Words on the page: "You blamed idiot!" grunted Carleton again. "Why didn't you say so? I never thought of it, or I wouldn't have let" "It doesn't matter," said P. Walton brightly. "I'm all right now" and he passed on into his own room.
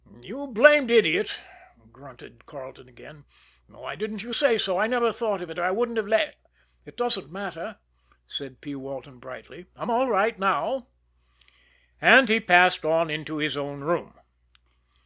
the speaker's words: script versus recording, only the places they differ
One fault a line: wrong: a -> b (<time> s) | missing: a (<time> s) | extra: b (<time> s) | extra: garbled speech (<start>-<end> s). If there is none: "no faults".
no faults